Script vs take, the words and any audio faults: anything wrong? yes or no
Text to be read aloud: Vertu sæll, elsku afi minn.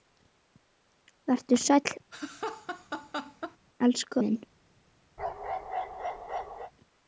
yes